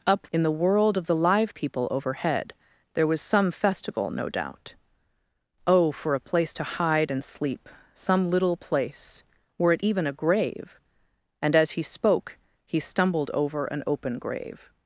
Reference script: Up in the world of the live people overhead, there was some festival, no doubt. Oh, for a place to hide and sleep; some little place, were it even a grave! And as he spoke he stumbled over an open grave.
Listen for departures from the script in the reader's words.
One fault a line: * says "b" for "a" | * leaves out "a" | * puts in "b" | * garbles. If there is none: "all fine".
all fine